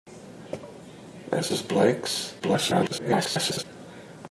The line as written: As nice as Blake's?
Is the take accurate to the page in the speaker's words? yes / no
no